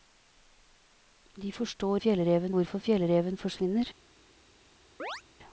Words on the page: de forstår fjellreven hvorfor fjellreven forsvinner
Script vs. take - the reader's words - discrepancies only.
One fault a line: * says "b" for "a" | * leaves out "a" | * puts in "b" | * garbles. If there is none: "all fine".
all fine